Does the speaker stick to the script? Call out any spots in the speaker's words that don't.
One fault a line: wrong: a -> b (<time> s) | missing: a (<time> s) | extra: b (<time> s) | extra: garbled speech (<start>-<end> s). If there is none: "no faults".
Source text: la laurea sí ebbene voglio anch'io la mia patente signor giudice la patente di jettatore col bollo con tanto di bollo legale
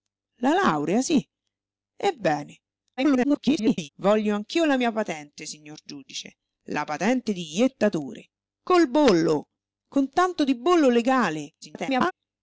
extra: garbled speech (3.0-3.9 s)
extra: garbled speech (11.6-12.1 s)